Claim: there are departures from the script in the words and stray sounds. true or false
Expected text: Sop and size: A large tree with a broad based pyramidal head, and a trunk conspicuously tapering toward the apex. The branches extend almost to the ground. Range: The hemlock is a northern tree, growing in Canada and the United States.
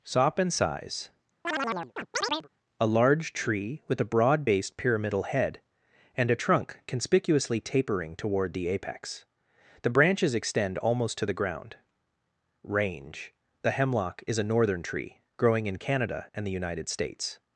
true